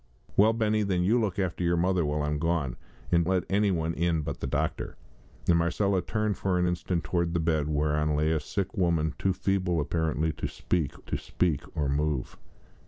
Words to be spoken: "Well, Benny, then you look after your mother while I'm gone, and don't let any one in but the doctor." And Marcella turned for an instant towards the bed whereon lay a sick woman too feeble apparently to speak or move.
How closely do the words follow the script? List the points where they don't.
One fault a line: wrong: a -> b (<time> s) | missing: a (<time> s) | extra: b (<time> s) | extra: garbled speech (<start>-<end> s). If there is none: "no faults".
missing: don't (3.2 s)
extra: to speak (11.0 s)